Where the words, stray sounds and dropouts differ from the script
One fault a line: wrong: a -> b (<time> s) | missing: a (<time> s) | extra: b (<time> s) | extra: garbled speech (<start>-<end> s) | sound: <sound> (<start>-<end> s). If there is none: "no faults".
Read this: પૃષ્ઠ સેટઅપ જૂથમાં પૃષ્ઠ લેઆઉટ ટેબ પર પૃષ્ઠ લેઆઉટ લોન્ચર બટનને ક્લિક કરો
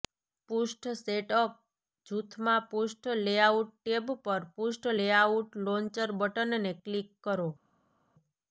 no faults